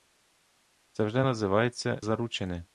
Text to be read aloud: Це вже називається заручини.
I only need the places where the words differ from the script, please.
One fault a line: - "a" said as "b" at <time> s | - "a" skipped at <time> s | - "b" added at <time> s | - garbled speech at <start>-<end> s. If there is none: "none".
none